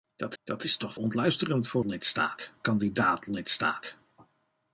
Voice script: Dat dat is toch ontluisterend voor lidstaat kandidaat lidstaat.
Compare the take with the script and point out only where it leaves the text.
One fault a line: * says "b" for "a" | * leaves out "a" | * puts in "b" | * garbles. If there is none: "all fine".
all fine